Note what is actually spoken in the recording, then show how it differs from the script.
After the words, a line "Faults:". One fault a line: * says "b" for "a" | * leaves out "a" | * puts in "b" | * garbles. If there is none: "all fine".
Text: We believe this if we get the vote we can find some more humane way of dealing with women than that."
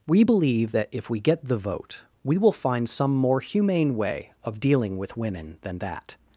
We believe that if we get the vote we will find some more humane way of dealing with women than that."
Faults:
* says "that" for "this"
* says "will" for "can"